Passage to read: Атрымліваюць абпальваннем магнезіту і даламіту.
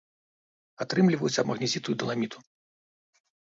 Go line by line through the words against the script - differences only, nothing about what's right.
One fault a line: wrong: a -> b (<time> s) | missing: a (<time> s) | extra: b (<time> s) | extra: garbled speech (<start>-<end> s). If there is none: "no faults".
missing: абпальваннем (1.4 s)